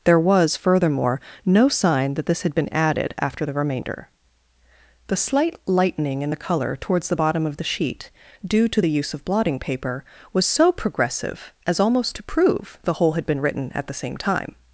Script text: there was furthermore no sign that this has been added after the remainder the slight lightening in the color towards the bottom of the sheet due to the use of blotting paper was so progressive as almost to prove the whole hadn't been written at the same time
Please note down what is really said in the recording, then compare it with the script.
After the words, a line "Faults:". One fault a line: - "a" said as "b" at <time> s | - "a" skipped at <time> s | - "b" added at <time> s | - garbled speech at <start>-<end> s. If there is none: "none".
there was furthermore no sign that this had been added after the remainder the slight lightening in the color towards the bottom of the sheet due to the use of blotting paper was so progressive as almost to prove the whole had been written at the same time
Faults:
- "has" said as "had" at 2.4 s
- "hadn't" said as "had" at 13.1 s